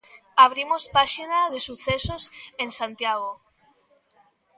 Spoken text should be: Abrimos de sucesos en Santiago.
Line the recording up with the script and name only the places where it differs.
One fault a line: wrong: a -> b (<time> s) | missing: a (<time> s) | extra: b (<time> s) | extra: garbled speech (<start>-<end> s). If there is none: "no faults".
extra: páxina (1.0 s)